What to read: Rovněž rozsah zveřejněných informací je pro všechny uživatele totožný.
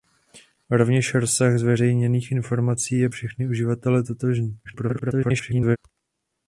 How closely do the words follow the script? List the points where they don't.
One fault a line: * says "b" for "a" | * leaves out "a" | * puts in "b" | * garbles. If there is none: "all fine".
* leaves out "pro"
* garbles